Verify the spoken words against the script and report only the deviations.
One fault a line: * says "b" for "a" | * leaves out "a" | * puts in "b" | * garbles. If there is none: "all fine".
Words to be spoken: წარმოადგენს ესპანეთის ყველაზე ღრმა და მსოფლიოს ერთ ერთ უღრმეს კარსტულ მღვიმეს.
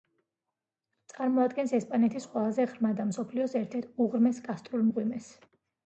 all fine